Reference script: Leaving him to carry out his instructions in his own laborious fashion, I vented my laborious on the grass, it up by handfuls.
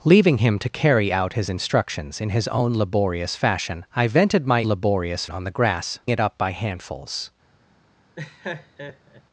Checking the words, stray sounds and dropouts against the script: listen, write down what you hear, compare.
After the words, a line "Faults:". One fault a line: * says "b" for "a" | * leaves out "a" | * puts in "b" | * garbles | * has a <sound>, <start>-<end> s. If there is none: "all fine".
Leaving him to carry out his instructions in his own laborious fashion, I vented my laborious on the grass, it up by handfuls.
Faults:
* has a laugh, 8.2-9.2 s